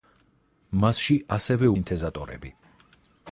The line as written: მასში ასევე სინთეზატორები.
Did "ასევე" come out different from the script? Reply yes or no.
no